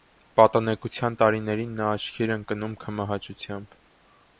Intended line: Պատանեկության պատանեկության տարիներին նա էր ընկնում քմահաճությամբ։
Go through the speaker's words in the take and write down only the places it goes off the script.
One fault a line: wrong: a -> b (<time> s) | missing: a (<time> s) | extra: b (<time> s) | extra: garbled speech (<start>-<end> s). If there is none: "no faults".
missing: պատանեկության (1.2 s)
extra: աչքի (2.0 s)